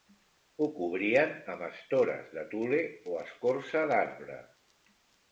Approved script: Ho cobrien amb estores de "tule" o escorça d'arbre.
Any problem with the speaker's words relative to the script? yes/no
no